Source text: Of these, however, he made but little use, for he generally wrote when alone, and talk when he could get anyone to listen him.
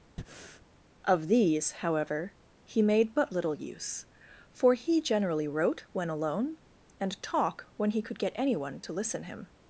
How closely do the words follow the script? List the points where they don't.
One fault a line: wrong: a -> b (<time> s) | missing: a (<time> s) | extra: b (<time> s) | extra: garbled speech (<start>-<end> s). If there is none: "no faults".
no faults